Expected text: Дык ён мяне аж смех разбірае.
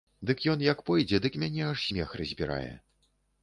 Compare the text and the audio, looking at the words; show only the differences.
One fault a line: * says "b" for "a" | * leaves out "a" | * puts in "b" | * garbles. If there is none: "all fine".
* puts in "як пойдзе дык"